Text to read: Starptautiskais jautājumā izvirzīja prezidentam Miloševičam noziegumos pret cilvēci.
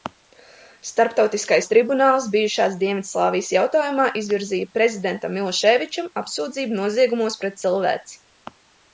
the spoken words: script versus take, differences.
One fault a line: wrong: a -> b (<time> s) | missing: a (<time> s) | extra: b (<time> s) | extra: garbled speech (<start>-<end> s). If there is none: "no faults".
extra: tribunāls bijušās Dienvidslāvijas (1.7 s)
extra: apsūdzību (6.2 s)